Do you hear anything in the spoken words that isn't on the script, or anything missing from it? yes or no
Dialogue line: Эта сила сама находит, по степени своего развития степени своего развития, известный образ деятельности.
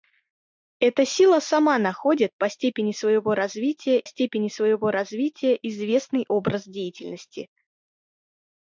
no